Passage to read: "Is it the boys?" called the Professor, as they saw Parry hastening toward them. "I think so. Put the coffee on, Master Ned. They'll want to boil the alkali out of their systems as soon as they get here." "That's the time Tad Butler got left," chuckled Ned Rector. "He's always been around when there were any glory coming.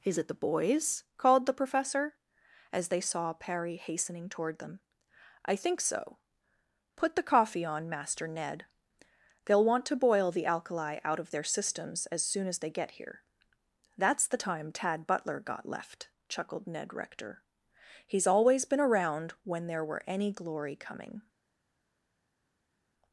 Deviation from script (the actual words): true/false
false